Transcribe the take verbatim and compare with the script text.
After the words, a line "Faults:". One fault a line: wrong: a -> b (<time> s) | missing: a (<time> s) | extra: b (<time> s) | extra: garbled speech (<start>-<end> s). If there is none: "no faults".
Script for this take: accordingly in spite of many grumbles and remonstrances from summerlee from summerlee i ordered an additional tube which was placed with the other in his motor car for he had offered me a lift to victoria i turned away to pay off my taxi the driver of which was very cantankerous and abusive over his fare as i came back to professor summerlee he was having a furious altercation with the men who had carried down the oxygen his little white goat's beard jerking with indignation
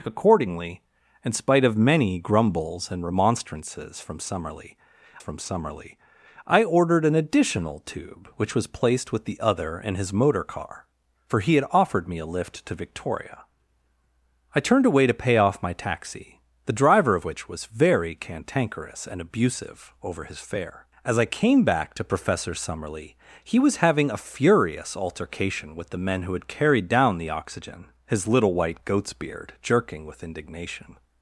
accordingly in spite of many grumbles and remonstrances from summerlee from summerlee i ordered an additional tube which was placed with the other in his motor car for he had offered me a lift to victoria i turned away to pay off my taxi the driver of which was very cantankerous and abusive over his fare as i came back to professor summerlee he was having a furious altercation with the men who had carried down the oxygen his little white goat's beard jerking with indignation
Faults:
no faults